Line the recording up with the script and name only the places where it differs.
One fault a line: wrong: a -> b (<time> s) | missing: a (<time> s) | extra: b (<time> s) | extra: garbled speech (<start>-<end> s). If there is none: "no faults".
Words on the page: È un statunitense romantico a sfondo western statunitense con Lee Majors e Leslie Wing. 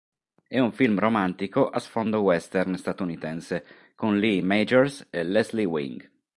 wrong: statunitense -> film (0.7 s)